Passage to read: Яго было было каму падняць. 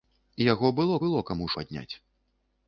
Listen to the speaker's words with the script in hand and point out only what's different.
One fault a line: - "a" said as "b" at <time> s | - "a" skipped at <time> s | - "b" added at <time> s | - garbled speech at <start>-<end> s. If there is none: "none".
none